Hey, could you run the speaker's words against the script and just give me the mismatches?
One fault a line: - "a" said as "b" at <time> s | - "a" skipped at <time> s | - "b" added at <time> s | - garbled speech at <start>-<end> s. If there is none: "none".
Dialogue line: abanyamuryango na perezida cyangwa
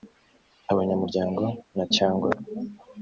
- "perezida" skipped at 1.9 s